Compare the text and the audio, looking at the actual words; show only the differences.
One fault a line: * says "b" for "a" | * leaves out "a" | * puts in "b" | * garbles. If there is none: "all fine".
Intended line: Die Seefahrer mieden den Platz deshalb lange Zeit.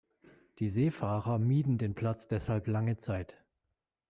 all fine